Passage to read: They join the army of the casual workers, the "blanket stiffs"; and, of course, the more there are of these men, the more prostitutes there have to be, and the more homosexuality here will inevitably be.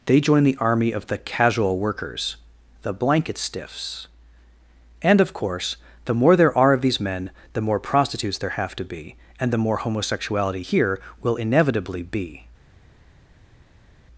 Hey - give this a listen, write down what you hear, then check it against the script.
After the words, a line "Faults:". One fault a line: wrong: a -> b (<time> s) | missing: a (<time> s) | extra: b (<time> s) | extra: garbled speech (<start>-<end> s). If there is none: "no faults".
They join the army of the casual workers, the "blanket stiffs"; and, of course, the more there are of these men, the more prostitutes there have to be, and the more homosexuality here will inevitably be.
Faults:
no faults